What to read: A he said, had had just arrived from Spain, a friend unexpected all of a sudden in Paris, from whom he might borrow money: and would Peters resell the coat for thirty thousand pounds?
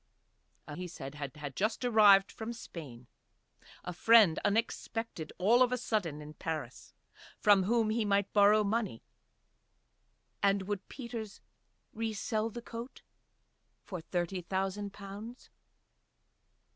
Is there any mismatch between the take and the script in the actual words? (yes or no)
no